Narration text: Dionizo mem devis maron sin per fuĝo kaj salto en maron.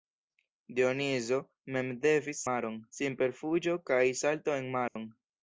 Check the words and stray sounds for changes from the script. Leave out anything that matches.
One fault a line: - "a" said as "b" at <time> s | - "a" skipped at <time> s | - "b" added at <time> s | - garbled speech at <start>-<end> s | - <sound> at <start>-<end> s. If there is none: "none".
- dropout at 4.9-5.0 s